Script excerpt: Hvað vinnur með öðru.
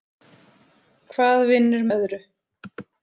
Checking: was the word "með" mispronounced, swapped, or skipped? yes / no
yes